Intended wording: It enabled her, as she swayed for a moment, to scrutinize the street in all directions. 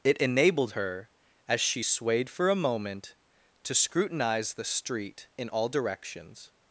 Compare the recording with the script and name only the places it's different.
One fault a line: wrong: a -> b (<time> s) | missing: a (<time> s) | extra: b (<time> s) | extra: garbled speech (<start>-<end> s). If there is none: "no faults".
no faults